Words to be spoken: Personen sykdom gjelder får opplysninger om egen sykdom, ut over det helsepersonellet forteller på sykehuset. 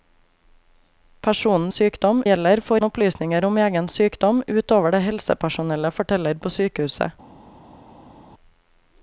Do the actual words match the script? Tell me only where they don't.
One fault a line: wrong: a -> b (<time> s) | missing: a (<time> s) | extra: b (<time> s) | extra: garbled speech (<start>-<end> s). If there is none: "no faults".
no faults